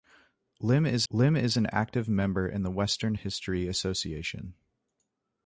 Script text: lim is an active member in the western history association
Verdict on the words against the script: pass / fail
fail